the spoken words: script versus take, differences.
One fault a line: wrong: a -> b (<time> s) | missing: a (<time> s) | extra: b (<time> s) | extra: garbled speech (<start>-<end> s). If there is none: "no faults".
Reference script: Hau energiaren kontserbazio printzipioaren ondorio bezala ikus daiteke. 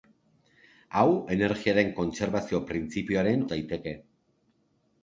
missing: ondorio bezala ikus (3.4 s)